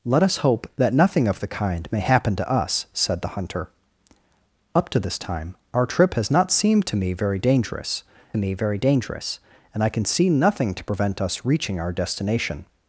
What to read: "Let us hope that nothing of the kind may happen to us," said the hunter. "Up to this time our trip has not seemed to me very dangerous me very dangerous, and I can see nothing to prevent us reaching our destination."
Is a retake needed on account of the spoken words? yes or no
no